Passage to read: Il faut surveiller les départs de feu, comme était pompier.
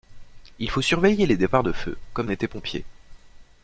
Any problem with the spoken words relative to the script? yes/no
no